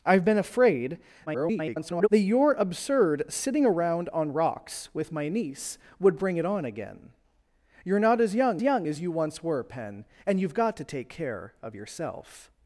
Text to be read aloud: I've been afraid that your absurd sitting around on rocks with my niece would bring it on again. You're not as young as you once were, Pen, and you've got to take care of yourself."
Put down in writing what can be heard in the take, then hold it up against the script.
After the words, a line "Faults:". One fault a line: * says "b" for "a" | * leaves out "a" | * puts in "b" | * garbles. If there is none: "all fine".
I've been afraid [garbled] that your absurd sitting around on rocks with my niece would bring it on again. You're not as young young as you once were, Pen, and you've got to take care of yourself."
Faults:
* garbles
* puts in "young"